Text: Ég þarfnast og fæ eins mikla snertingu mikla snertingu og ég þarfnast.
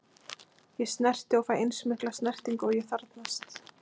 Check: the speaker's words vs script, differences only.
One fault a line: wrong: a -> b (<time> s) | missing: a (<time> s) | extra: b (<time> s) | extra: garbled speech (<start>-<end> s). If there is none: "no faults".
wrong: þarfnast -> snerti (0.9 s)
missing: mikla snertingu (2.7 s)